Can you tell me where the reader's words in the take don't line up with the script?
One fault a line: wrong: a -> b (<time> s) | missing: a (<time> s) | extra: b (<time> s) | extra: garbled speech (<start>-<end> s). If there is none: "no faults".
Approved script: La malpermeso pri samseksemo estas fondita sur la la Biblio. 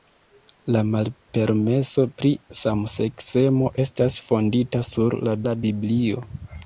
no faults